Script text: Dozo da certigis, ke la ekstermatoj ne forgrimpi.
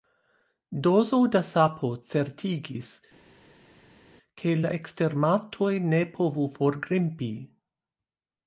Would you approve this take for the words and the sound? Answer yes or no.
no